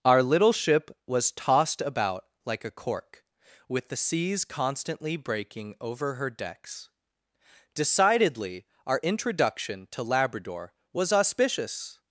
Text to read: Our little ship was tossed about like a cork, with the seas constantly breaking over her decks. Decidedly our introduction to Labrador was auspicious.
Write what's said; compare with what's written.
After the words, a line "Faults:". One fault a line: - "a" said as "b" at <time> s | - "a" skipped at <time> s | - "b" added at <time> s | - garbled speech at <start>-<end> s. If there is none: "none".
Our little ship was tossed about like a cork, with the seas constantly breaking over her decks. Decidedly our introduction to Labrador was auspicious.
Faults:
none